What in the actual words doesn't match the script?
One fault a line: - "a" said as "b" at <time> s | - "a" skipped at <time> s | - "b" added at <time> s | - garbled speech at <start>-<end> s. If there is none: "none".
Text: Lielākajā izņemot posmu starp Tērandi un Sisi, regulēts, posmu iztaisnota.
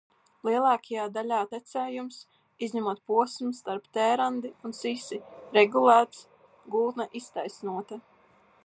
- "daļā tecējums" added at 1.2 s
- "posmu" said as "gultne" at 6.8 s